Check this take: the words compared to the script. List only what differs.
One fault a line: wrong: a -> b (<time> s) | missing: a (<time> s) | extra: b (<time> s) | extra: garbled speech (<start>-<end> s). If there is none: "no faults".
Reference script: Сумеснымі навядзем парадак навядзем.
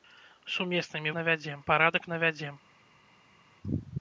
no faults